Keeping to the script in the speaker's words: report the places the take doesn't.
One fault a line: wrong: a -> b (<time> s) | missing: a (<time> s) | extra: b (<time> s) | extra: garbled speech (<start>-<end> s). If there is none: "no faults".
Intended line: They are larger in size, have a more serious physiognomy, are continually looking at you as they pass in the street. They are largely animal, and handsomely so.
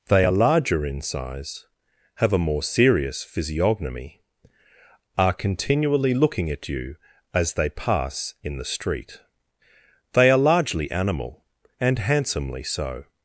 no faults